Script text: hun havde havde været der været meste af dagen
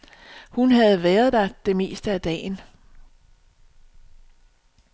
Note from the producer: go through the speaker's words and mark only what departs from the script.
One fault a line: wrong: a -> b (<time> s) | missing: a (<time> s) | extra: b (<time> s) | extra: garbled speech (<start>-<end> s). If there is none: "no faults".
missing: havde (1.0 s)
wrong: været -> det (1.7 s)